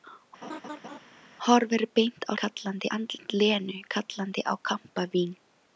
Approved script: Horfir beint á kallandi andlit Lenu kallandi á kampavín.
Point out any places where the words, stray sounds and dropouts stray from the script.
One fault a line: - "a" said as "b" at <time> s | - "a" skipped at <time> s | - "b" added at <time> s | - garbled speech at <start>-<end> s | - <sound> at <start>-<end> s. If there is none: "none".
- laugh at 0.4-1.0 s